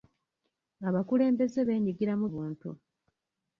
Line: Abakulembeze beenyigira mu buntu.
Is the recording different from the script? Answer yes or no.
no